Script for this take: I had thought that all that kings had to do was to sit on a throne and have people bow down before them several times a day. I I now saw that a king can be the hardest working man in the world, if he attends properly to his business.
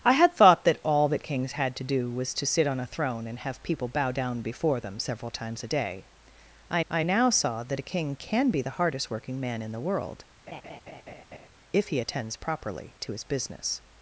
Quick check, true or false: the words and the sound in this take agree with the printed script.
false